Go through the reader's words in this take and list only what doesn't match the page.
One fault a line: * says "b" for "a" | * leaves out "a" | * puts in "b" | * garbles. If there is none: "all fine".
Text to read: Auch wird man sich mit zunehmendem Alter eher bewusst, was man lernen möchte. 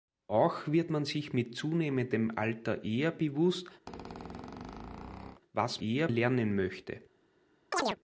* says "eher" for "man"